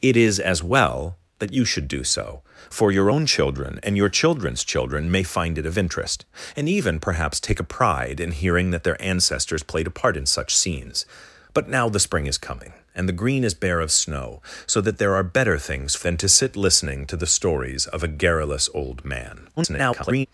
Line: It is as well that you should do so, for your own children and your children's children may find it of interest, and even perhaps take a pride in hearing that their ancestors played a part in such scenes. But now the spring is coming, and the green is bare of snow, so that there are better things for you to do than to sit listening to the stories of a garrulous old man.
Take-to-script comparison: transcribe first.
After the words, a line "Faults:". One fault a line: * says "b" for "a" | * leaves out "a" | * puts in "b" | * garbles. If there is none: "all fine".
It is as well that you should do so, for your own children and your children's children may find it of interest, and even perhaps take a pride in hearing that their ancestors played a part in such scenes. But now the spring is coming, and the green is bare of snow, so that there are better things for than to sit listening to the stories of a garrulous old man. [garbled]
Faults:
* leaves out "you to do"
* garbles